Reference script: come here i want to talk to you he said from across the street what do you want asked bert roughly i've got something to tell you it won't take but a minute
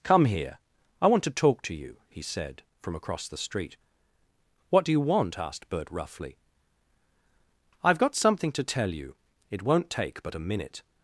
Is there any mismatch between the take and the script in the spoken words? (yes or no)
no